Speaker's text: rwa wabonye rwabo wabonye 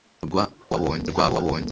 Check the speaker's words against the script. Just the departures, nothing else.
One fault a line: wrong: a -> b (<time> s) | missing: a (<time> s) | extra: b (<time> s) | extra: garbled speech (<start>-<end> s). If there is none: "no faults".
no faults